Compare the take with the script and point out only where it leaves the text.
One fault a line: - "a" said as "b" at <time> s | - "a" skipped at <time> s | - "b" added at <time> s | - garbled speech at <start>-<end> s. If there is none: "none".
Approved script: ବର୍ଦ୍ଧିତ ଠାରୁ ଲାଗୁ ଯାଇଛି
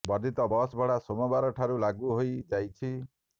- "ବସ୍ ଭଡ଼ା ସୋମବାର" added at 0.5 s
- "ହୋଇ" added at 2.1 s